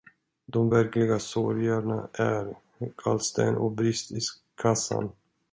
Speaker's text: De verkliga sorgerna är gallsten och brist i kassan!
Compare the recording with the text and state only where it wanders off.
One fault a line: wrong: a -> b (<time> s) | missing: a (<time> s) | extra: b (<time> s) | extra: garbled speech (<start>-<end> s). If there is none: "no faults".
no faults